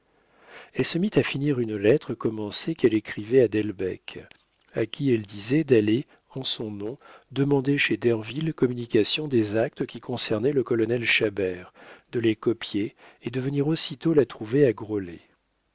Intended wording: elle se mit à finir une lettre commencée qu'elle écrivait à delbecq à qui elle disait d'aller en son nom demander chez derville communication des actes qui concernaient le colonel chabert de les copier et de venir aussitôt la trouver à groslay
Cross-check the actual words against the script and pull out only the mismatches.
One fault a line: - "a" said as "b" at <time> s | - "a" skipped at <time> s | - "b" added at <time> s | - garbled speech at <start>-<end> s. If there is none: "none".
none